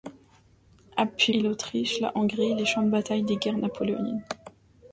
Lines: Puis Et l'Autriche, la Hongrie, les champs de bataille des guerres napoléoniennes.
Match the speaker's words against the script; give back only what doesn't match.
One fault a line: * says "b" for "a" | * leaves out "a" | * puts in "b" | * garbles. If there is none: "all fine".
all fine